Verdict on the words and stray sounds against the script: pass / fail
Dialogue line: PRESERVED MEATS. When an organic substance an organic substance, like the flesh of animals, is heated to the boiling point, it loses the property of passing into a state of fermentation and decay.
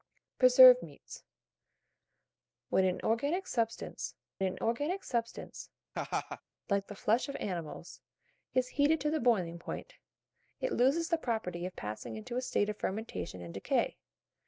fail